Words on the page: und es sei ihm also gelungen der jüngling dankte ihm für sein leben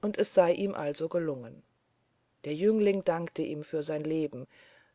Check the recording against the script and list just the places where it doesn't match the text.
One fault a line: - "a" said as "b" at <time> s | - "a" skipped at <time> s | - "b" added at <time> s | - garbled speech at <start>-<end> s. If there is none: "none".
none